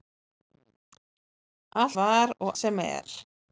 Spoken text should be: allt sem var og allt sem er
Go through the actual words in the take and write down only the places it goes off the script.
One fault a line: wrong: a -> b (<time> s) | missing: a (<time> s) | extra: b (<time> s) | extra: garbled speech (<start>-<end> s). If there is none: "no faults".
missing: sem (2.0 s)
missing: allt (2.5 s)